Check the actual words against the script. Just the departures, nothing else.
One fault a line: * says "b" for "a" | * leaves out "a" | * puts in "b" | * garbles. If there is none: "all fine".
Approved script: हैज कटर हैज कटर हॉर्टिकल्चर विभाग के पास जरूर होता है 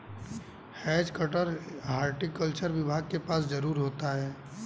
* leaves out "हैज कटर"